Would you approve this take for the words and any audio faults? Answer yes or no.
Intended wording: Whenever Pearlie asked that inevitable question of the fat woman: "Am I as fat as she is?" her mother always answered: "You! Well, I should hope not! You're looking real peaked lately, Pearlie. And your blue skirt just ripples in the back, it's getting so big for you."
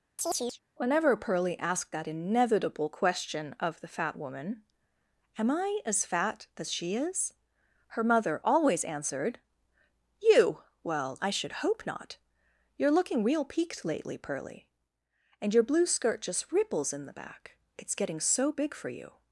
no